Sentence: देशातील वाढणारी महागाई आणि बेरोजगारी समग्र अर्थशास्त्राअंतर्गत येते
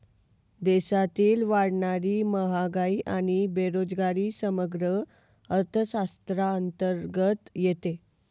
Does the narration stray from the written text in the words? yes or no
no